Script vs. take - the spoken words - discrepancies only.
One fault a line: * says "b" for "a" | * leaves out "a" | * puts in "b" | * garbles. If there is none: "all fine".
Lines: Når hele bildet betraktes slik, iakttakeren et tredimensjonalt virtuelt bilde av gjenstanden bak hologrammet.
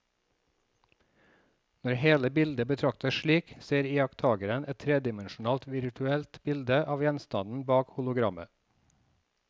* puts in "ser"